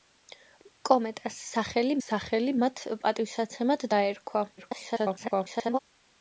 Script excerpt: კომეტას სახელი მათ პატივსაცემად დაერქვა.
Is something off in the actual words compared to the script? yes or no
yes